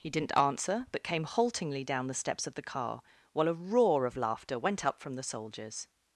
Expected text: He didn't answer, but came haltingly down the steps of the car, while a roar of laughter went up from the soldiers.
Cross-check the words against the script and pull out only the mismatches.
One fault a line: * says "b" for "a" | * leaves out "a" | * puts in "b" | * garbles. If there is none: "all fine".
all fine